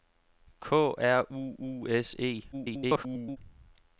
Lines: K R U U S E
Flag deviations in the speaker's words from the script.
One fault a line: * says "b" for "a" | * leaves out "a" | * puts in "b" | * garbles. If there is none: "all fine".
* garbles